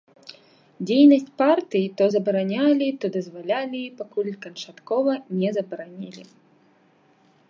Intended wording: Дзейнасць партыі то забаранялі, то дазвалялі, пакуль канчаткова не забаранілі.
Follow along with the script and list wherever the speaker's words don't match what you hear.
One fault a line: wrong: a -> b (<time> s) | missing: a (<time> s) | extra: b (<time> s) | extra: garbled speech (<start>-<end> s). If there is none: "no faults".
no faults